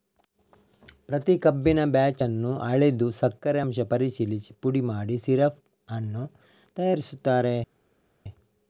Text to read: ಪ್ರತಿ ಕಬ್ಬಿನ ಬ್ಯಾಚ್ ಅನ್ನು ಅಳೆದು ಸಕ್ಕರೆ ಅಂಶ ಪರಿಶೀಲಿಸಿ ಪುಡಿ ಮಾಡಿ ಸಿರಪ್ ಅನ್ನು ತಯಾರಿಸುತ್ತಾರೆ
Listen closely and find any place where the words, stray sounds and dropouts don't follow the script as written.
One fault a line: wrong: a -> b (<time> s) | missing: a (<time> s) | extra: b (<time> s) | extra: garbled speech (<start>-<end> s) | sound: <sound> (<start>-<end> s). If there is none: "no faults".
no faults